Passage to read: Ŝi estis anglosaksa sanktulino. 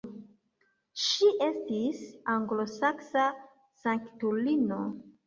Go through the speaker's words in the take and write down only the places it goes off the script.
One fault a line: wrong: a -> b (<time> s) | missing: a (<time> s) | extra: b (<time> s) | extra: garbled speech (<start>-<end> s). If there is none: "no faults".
no faults